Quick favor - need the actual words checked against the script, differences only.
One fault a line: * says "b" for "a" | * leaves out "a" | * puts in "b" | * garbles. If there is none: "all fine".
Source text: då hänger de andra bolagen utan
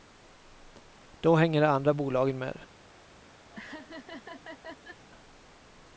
* says "med" for "utan"